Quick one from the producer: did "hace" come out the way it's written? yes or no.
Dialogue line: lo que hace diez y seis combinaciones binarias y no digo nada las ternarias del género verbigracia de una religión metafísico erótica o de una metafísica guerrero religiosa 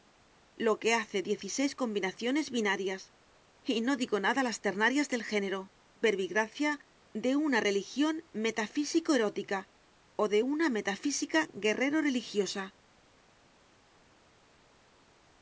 yes